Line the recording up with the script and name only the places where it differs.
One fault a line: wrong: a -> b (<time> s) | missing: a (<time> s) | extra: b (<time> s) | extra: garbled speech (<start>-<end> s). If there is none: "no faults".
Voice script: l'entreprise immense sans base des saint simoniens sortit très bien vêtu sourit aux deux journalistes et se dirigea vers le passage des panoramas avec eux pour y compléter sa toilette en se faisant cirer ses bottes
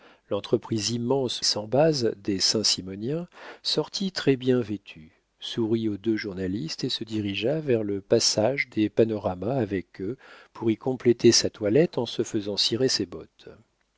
no faults